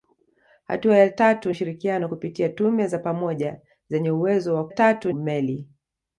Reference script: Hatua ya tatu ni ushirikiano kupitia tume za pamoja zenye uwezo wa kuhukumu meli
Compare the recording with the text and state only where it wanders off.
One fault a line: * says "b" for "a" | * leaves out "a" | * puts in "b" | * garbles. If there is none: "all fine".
* leaves out "ni"
* says "tatu" for "kuhukumu"